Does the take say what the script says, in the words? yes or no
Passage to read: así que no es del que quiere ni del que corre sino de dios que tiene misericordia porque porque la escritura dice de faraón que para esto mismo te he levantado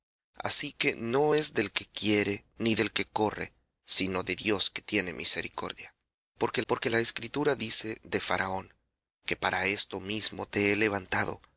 yes